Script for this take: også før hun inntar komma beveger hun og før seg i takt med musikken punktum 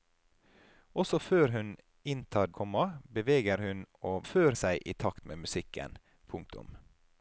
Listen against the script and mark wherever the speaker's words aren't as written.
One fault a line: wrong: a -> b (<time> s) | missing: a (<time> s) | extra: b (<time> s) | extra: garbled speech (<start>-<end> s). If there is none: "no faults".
no faults